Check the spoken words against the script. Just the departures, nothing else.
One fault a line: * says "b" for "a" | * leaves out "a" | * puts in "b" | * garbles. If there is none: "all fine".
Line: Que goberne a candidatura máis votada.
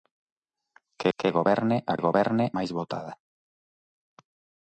* puts in "que"
* says "goberne" for "candidatura"